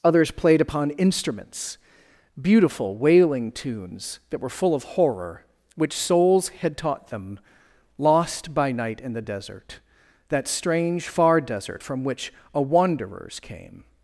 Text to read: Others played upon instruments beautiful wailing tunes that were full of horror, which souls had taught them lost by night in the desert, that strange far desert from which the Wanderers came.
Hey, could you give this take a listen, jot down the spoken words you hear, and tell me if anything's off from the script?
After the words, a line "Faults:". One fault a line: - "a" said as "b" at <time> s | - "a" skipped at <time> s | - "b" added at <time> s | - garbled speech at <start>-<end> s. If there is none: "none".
Others played upon instruments beautiful wailing tunes that were full of horror, which souls had taught them lost by night in the desert, that strange far desert from which a Wanderers came.
Faults:
- "the" said as "a" at 12.5 s